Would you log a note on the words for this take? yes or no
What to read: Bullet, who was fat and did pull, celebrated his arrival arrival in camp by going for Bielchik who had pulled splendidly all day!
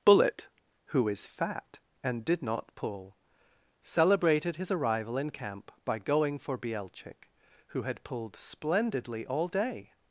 yes